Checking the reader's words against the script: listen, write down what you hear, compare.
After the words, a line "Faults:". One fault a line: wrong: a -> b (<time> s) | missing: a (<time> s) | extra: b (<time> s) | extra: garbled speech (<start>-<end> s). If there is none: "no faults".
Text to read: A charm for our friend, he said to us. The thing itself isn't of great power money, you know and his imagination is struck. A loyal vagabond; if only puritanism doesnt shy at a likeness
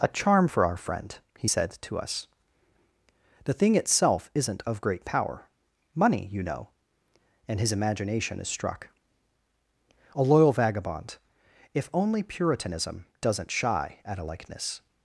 A charm for our friend, he said to us. The thing itself isn't of great power money, you know and his imagination is struck. A loyal vagabond; if only puritanism doesnt shy at a likeness
Faults:
no faults